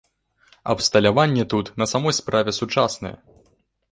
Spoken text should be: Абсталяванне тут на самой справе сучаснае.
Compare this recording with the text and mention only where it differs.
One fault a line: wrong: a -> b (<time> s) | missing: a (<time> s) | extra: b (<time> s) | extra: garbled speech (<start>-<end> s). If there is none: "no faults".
no faults